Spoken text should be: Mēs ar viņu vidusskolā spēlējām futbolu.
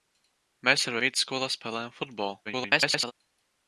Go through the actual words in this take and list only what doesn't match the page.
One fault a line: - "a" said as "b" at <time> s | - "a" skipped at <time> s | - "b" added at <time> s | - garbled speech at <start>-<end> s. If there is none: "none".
- "viņu" skipped at 1.0 s
- garbled speech at 2.5-3.1 s